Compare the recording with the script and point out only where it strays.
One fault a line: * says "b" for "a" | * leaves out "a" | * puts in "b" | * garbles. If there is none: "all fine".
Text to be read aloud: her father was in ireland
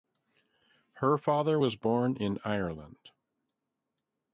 * puts in "born"